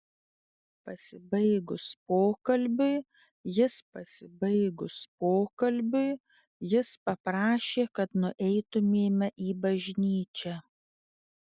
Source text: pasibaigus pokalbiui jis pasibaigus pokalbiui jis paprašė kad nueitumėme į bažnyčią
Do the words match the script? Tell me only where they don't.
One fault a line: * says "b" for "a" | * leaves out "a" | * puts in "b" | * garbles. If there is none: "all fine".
all fine